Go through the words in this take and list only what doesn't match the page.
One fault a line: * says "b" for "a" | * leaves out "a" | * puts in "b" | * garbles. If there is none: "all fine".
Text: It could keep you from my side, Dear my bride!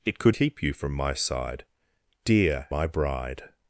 all fine